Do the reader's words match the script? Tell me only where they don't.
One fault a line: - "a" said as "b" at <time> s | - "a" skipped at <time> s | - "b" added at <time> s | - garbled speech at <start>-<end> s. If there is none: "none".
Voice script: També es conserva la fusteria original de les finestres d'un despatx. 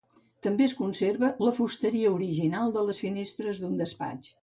none